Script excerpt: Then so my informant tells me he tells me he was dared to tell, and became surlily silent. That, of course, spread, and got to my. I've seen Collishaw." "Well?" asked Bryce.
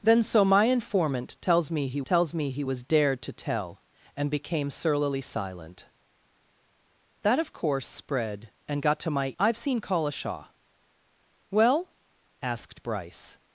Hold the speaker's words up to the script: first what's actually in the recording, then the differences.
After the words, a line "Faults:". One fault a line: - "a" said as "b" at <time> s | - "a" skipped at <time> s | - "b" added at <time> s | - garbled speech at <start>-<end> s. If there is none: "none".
Then so my informant tells me he tells me he was dared to tell, and became surlily silent. That, of course, spread, and got to my. I've seen Collishaw." "Well?" asked Bryce.
Faults:
none